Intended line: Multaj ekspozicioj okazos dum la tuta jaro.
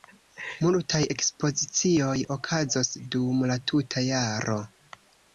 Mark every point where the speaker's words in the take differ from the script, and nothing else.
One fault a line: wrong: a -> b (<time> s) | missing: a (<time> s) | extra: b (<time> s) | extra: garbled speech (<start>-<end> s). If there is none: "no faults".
no faults